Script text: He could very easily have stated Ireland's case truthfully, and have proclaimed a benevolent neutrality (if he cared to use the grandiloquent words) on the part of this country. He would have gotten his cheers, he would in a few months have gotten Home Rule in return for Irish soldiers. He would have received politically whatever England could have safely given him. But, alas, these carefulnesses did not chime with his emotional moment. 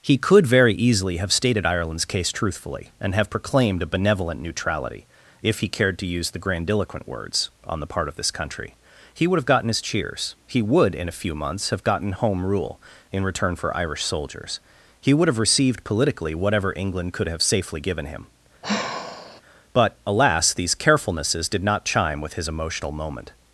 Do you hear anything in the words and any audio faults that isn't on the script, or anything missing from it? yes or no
yes